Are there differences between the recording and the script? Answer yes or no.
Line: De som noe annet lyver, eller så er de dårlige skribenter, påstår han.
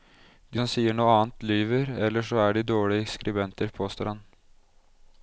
yes